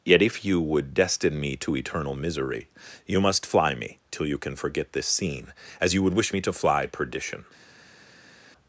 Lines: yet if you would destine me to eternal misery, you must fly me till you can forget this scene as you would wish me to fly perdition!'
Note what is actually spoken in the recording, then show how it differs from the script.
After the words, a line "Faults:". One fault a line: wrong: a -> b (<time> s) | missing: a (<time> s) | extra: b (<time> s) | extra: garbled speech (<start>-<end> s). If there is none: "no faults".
yet if you would destine me to eternal misery, you must fly me till you can forget this scene as you would wish me to fly perdition!'
Faults:
no faults